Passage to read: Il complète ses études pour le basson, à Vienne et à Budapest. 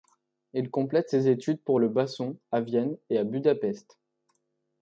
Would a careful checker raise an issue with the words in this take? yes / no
no